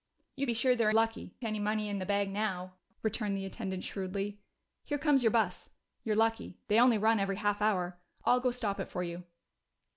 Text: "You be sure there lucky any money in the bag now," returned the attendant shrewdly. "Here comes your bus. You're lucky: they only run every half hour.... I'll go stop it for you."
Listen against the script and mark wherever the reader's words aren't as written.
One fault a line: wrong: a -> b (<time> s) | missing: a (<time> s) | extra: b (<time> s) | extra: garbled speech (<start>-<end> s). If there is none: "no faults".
no faults